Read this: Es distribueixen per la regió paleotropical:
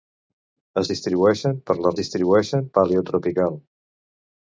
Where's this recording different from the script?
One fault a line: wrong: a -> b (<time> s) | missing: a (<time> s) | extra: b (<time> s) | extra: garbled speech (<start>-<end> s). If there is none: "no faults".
wrong: regió -> distribueixen (2.0 s)